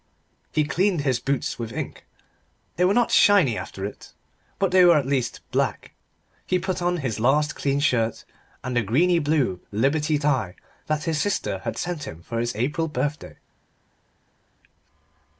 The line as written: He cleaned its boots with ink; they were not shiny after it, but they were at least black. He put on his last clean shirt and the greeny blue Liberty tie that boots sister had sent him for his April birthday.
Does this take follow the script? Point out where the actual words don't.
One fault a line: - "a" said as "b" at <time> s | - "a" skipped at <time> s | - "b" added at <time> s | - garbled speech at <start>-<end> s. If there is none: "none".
- "its" said as "his" at 1.0 s
- "boots" said as "his" at 11.0 s